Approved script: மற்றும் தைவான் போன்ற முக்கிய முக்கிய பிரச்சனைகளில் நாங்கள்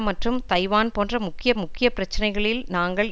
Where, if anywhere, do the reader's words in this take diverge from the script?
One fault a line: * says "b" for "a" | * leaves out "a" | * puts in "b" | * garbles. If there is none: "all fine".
all fine